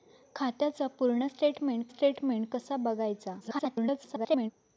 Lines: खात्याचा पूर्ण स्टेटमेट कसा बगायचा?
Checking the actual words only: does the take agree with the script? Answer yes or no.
no